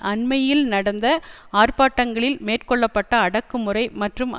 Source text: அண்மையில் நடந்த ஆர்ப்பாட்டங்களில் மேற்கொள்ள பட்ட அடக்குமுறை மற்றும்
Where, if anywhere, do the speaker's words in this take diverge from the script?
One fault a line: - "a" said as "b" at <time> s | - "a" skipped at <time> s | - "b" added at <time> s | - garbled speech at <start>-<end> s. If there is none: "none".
none